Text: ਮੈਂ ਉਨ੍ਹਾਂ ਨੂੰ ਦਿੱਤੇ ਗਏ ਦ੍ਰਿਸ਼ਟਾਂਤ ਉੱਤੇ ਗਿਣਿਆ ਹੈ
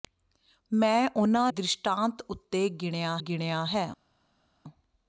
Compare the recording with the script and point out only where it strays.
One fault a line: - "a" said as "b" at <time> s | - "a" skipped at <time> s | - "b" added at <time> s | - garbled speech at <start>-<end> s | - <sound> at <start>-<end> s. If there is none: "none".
- "ਨੂੰ ਦਿੱਤੇ ਗਏ" skipped at 1.5 s
- "ਗਿਣਿਆ" added at 3.2 s